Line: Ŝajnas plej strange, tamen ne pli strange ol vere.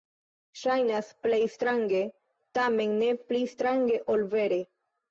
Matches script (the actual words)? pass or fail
pass